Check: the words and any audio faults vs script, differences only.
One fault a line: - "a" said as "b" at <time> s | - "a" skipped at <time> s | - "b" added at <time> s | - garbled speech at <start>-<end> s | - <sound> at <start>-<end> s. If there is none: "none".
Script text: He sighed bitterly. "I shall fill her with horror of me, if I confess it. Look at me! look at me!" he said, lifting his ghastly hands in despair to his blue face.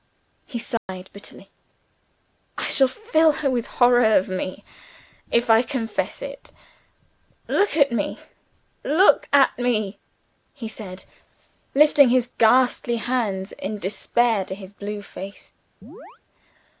- dropout at 0.8-0.9 s
- chirp at 15.8-16.2 s